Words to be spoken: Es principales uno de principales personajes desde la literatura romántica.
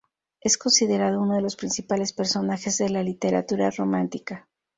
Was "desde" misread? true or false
true